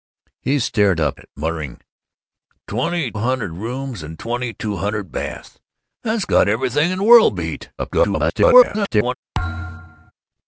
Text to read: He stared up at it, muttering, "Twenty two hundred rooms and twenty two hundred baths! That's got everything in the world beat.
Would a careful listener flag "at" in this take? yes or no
yes